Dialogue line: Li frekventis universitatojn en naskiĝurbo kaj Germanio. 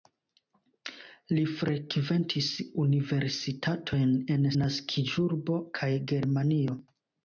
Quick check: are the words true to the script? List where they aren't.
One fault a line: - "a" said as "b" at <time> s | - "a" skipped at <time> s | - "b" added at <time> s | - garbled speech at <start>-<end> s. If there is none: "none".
none